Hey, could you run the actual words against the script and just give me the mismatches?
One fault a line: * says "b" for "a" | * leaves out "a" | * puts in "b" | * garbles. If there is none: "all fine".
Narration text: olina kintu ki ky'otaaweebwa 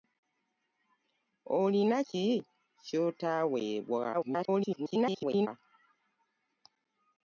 * leaves out "kintu"
* garbles